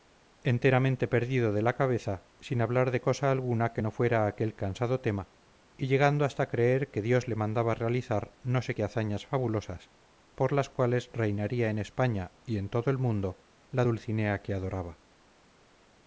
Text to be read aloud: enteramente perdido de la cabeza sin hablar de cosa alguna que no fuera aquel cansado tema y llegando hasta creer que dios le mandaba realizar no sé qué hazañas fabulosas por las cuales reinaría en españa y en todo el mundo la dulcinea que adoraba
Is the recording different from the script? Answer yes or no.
no